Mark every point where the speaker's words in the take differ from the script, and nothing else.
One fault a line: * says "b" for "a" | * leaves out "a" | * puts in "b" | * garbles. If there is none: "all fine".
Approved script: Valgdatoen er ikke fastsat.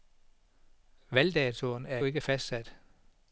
all fine